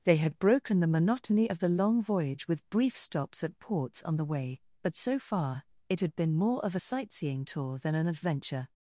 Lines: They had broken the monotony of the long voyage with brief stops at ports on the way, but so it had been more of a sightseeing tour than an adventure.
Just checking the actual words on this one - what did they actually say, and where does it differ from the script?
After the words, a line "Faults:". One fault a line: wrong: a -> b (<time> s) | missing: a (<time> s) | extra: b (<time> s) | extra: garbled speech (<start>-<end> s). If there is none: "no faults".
They had broken the monotony of the long voyage with brief stops at ports on the way, but so far, it had been more of a sightseeing tour than an adventure.
Faults:
extra: far (5.2 s)